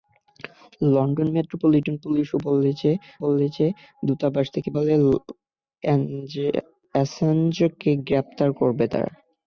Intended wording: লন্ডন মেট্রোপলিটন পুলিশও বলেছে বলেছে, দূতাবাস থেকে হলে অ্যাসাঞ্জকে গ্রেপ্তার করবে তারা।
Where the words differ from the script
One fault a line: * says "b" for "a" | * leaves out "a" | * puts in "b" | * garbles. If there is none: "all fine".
all fine